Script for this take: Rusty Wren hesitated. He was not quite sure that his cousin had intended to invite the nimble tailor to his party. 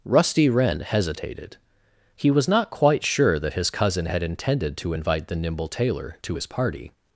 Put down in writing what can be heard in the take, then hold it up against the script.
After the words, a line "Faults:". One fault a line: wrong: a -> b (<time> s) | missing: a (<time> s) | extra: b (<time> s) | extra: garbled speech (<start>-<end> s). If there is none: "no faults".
Rusty Wren hesitated. He was not quite sure that his cousin had intended to invite the nimble tailor to his party.
Faults:
no faults